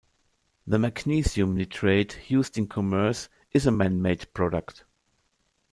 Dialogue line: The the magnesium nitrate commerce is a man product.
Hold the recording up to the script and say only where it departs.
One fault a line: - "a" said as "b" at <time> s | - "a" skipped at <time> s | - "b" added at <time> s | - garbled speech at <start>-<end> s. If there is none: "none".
- "the" skipped at 0.8 s
- "used in" added at 2.3 s
- "made" added at 4.0 s